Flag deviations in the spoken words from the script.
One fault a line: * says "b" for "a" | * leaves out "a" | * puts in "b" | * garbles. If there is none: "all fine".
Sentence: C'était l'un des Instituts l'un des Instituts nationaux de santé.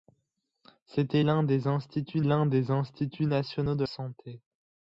all fine